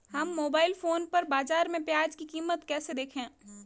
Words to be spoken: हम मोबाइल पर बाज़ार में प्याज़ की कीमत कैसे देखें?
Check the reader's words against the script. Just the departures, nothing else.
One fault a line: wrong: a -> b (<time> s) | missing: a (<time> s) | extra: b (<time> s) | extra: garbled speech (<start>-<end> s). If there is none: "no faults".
extra: फोन (0.7 s)